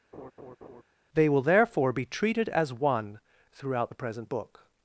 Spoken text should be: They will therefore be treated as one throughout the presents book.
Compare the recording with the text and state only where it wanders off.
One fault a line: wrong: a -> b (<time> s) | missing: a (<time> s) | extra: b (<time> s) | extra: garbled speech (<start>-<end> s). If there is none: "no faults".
wrong: presents -> present (3.9 s)